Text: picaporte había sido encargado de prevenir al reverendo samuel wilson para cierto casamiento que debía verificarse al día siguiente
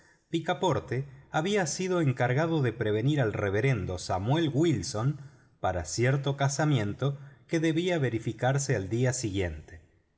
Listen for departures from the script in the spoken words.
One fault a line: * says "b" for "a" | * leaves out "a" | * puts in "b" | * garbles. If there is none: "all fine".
all fine